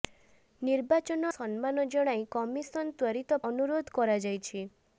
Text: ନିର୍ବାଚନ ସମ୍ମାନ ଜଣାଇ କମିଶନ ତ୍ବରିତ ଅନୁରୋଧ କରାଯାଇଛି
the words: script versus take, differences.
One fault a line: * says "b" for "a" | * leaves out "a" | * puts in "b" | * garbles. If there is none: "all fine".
all fine